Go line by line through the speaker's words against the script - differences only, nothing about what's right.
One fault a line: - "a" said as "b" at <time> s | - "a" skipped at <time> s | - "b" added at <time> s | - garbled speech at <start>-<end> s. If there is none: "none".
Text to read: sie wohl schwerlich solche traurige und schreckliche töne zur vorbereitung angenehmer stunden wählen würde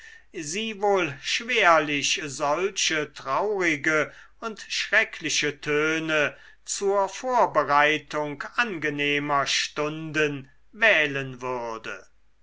none